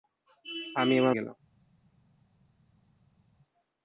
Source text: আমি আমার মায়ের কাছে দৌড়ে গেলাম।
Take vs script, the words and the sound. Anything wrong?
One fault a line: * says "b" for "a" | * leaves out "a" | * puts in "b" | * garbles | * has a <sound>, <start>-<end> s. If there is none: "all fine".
* leaves out "মায়ের কাছে দৌড়ে"